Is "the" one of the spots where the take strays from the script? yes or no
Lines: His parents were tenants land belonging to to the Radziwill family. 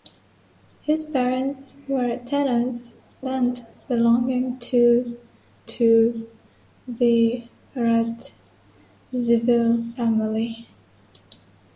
no